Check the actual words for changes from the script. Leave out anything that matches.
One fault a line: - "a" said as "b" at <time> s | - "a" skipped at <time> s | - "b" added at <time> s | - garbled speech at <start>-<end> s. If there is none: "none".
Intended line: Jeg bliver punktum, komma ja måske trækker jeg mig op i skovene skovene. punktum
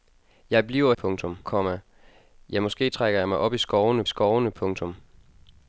none